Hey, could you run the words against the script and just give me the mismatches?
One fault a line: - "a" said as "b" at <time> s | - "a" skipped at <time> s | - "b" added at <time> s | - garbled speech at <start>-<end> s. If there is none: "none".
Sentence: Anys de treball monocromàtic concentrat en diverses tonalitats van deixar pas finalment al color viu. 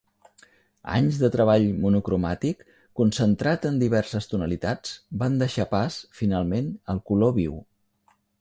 none